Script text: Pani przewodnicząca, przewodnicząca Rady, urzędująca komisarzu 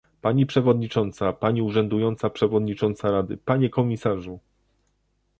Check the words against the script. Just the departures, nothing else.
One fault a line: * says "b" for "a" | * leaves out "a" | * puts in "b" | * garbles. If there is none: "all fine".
* puts in "pani urzędująca"
* says "panie" for "urzędująca"